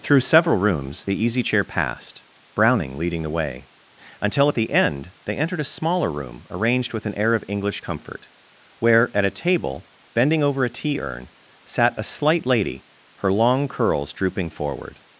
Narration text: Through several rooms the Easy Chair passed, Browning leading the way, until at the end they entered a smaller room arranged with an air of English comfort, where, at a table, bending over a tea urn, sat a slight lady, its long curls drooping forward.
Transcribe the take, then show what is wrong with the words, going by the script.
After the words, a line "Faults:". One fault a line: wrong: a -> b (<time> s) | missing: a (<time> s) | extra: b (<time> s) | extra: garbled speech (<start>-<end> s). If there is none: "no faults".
Through several rooms the Easy Chair passed, Browning leading the way, until at the end they entered a smaller room arranged with an air of English comfort, where, at a table, bending over a tea urn, sat a slight lady, her long curls drooping forward.
Faults:
wrong: its -> her (13.2 s)